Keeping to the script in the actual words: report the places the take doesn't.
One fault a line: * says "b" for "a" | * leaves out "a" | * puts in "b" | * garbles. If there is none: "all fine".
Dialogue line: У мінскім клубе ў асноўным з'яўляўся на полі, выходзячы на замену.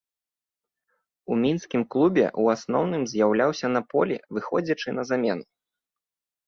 all fine